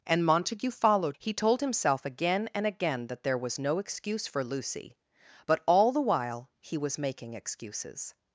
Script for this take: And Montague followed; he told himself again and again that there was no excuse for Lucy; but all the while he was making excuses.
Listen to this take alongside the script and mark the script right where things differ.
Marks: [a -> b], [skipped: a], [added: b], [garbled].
And Montague followed; he told himself again and again that there was no excuse for Lucy; but all the while he was making excuses.